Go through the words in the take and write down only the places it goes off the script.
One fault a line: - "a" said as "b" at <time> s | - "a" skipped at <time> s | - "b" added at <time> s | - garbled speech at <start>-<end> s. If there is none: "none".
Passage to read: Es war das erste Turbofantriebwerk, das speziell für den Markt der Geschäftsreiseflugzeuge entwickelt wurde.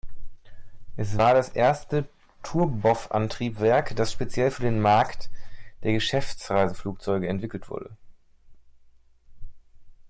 none